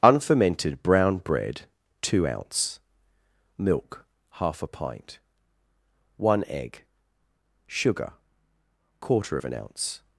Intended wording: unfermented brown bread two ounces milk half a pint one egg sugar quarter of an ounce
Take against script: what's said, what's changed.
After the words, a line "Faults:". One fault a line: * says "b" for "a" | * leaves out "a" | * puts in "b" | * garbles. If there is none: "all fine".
unfermented brown bread two ounce milk half a pint one egg sugar quarter of an ounce
Faults:
* says "ounce" for "ounces"